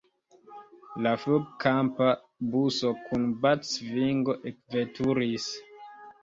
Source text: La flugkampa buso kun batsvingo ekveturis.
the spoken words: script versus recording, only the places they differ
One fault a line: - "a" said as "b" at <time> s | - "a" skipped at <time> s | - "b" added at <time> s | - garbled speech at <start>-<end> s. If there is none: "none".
none